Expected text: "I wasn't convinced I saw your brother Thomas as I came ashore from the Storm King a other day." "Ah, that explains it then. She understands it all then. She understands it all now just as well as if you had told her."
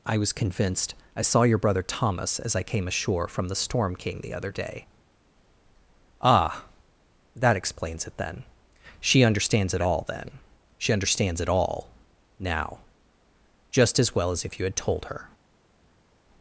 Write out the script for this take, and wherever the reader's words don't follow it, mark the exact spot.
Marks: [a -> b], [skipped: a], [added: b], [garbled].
"I [wasn't -> was] convinced I saw your brother Thomas as I came ashore from the Storm King [a -> the] other day." "Ah, that explains it then. She understands it all then. She understands it all now just as well as if you had told her."